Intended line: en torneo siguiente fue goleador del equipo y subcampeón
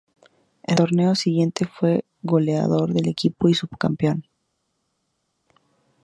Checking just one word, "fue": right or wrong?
right